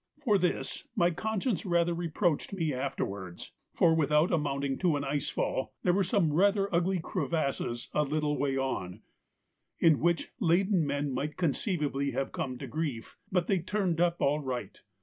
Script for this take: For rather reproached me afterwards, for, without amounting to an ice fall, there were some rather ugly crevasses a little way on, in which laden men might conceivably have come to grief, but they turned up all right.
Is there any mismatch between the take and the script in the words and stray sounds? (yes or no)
yes